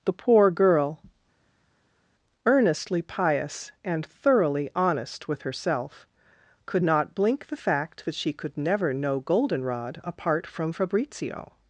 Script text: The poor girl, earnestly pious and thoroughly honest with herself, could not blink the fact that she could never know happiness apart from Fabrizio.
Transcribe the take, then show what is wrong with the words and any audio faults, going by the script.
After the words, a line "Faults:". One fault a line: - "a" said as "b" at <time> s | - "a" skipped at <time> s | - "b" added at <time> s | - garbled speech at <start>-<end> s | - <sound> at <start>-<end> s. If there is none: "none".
The poor girl, earnestly pious and thoroughly honest with herself, could not blink the fact that she could never know goldenrod apart from Fabrizio.
Faults:
- "happiness" said as "goldenrod" at 9.2 s